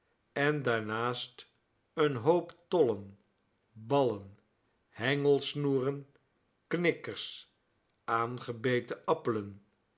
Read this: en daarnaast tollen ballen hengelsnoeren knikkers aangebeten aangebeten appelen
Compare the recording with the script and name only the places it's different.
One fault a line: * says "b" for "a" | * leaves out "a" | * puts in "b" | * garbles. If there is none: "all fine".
* puts in "een hoop"
* leaves out "aangebeten"